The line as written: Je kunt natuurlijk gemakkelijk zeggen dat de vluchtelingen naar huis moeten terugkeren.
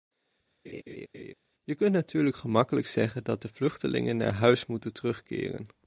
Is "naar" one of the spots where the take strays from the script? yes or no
no